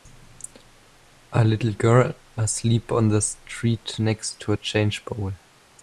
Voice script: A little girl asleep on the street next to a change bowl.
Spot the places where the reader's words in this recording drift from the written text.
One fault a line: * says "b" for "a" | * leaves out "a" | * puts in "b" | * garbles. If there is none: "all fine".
all fine